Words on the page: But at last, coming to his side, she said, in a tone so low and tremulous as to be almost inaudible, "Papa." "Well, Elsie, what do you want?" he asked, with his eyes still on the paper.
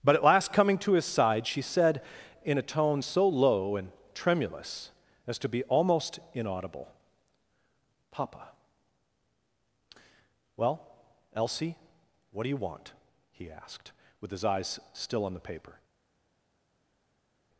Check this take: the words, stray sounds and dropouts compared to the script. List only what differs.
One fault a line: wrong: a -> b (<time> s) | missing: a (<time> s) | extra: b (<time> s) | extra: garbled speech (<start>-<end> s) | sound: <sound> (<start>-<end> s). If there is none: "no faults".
no faults